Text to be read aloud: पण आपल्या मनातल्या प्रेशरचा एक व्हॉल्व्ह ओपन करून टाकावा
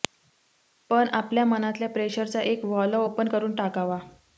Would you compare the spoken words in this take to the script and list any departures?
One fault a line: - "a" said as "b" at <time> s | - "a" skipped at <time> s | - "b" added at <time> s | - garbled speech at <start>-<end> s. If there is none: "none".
none